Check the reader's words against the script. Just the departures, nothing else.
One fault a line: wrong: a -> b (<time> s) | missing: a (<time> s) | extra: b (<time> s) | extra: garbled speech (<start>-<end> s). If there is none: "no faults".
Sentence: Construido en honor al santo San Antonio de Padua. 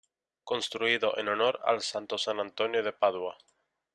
no faults